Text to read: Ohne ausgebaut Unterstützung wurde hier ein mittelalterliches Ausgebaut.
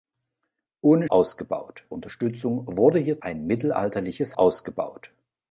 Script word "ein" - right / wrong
right